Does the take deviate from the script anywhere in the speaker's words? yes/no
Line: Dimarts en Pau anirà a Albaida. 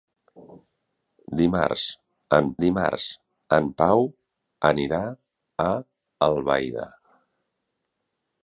yes